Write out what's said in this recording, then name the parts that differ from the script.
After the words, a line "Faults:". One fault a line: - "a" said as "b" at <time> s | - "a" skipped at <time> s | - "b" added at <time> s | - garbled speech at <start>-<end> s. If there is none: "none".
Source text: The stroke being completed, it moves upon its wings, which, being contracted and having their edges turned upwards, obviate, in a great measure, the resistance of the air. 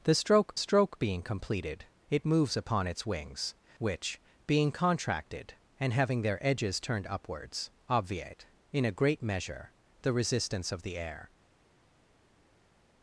The stroke stroke being completed, it moves upon its wings, which, being contracted and having their edges turned upwards, obviate, in a great measure, the resistance of the air.
Faults:
- "stroke" added at 0.6 s